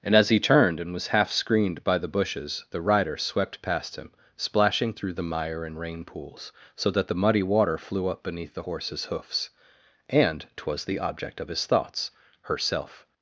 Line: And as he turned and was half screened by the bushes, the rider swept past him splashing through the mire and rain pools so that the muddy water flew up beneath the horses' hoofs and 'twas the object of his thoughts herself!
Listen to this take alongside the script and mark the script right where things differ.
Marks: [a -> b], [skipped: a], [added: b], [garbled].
And as he turned and was half screened by the bushes, the rider swept past him splashing through the mire and rain pools so that the muddy water flew up beneath the horses' hoofs and 'twas the object of his thoughts herself!